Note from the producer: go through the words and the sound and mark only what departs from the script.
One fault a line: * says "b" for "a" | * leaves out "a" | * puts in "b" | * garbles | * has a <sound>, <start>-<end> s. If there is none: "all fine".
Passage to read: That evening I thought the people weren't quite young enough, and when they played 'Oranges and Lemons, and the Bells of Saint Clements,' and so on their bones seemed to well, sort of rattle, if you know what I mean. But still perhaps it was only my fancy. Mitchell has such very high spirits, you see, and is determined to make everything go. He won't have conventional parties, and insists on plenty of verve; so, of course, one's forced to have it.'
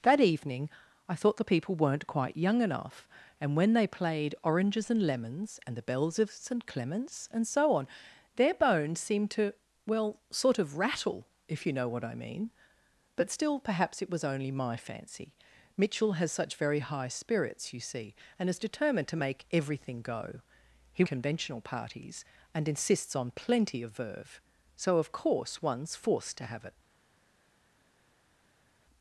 * leaves out "won't have"